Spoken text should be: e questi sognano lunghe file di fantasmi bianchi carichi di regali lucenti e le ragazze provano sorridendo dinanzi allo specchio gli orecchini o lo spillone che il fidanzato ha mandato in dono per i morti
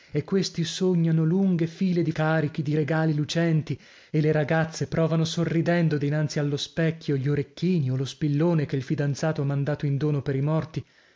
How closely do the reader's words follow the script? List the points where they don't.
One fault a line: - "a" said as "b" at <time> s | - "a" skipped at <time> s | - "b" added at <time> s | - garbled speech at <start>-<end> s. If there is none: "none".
- "fantasmi bianchi" skipped at 2.1 s